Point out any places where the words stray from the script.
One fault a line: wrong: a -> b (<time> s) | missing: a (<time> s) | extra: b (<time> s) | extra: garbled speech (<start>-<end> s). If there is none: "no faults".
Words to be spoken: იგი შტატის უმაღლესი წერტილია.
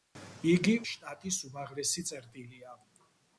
no faults